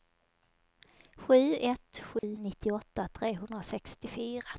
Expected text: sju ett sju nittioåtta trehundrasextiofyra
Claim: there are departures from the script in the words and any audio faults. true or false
true